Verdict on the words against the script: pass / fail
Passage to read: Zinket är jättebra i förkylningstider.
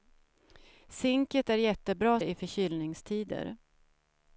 pass